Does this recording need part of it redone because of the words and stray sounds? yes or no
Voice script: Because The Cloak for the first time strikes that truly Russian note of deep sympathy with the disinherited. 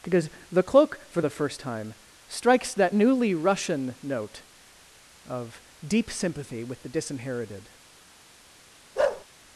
yes